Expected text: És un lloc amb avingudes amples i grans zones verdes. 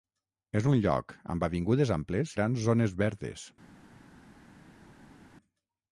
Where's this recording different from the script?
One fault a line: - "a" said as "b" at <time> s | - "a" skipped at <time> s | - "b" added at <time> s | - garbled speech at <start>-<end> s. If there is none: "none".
- "i" skipped at 2.4 s